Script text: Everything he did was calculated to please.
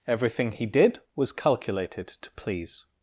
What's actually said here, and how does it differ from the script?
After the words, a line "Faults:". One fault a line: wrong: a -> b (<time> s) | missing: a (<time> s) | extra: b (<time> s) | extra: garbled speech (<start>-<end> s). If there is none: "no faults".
Everything he did was calculated to please.
Faults:
no faults